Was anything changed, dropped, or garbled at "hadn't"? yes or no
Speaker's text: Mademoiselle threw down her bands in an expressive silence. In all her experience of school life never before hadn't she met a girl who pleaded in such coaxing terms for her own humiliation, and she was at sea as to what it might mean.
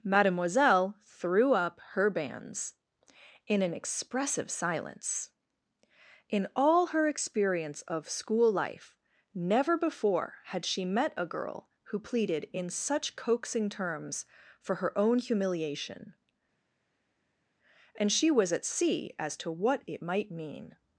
yes